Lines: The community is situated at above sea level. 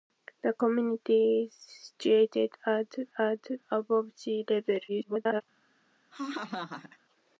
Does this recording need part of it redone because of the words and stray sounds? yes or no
yes